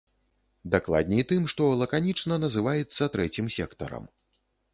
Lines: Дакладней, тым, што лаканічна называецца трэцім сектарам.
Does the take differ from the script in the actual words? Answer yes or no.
no